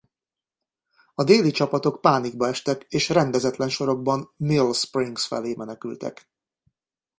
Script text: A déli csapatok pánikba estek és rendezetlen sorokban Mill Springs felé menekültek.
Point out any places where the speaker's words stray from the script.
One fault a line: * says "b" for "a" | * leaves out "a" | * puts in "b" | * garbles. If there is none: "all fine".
all fine